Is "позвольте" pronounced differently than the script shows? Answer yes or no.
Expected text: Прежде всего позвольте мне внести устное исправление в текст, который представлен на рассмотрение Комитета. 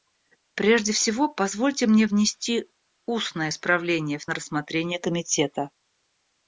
no